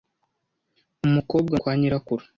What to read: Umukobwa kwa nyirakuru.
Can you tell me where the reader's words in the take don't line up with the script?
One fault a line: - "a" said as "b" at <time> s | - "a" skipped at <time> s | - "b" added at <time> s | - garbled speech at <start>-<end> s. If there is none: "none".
none